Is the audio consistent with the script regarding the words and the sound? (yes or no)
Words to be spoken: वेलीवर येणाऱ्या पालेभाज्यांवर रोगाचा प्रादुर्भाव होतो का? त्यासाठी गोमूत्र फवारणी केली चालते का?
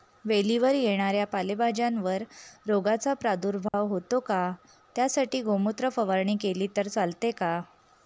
no